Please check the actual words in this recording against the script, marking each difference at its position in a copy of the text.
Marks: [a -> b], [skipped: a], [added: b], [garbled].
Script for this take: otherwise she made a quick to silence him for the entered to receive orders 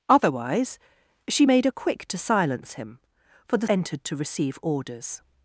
otherwise she made a quick to silence him for the entered to receive orders